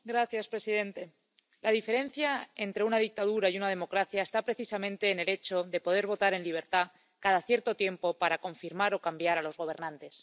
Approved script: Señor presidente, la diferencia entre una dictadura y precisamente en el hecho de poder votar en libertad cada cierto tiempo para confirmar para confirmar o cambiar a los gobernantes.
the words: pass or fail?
fail